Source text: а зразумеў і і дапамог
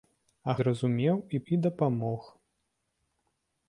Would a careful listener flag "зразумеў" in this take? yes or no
no